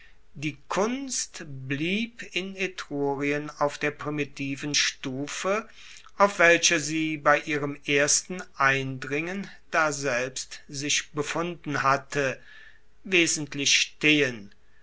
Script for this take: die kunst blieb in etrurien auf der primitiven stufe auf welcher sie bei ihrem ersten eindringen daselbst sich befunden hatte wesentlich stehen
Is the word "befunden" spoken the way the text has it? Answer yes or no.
yes